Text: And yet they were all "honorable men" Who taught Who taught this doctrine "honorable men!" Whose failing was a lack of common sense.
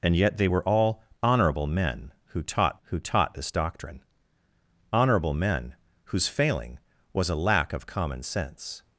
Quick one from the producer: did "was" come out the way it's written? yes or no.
yes